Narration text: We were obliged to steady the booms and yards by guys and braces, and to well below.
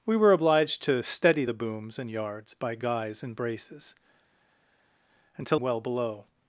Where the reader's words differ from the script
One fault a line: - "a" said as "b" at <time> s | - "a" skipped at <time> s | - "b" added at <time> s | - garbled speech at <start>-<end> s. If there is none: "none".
none